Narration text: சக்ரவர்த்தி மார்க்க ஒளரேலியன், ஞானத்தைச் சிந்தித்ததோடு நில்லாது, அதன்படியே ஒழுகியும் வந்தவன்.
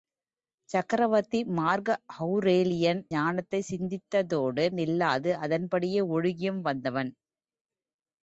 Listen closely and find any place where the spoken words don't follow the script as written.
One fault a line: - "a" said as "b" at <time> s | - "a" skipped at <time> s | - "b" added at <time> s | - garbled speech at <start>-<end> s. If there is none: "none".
none